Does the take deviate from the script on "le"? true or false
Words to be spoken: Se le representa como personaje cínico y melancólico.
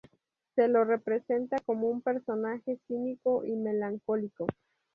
true